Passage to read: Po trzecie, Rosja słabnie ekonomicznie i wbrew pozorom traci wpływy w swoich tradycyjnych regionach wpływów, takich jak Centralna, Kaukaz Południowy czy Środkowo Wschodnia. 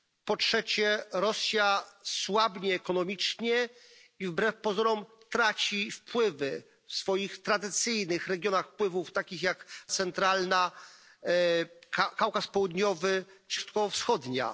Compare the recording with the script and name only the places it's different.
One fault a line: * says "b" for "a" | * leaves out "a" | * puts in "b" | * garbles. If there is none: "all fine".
all fine